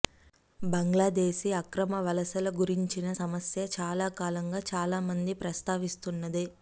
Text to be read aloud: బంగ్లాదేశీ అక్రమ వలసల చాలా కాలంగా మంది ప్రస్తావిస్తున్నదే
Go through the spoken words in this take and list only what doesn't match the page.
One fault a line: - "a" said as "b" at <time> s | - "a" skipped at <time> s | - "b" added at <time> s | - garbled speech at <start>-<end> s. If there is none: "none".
- "గురించిన సమస్య" added at 2.6 s
- "చాలా" added at 4.7 s